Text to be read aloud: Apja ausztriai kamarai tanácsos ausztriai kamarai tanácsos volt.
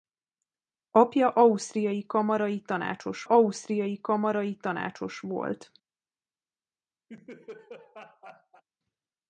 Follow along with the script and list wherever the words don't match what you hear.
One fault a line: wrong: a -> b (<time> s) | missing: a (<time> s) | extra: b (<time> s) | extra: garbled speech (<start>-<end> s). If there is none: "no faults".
no faults